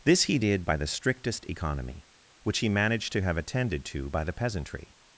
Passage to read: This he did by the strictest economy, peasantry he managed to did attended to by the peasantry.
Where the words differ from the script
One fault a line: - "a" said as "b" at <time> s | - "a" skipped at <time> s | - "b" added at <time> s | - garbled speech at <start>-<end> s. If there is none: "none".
- "peasantry" said as "which" at 2.4 s
- "did" said as "have" at 3.2 s